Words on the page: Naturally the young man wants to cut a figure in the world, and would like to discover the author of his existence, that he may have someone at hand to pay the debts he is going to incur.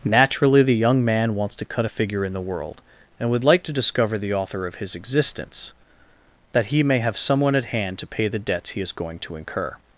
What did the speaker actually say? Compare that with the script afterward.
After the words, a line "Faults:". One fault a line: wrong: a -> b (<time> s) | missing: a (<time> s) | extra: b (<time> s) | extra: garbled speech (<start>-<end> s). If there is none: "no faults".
Naturally the young man wants to cut a figure in the world, and would like to discover the author of his existence, that he may have someone at hand to pay the debts he is going to incur.
Faults:
no faults